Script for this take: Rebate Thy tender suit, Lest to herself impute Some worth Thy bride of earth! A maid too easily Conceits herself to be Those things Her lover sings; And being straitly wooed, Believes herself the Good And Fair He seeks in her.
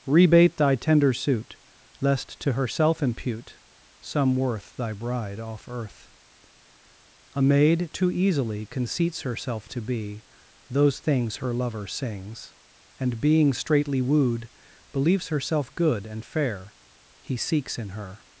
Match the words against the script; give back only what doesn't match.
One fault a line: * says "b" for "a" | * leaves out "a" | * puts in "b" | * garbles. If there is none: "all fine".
* says "off" for "of"
* leaves out "the"